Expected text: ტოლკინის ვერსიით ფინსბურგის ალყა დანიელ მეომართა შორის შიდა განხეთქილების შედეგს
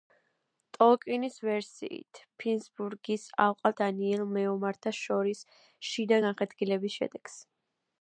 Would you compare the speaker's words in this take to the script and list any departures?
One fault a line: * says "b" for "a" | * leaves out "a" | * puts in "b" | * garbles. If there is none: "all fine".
all fine